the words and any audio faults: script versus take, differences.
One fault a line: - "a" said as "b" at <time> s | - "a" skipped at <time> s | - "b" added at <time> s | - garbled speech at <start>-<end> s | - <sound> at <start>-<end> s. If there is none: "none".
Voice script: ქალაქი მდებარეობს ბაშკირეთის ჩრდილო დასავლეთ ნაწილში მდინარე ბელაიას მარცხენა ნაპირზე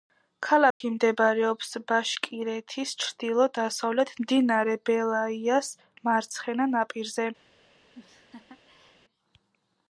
- dropout at 0.7-0.8 s
- "ნაწილში" skipped at 4.1 s
- laugh at 7.9-9.0 s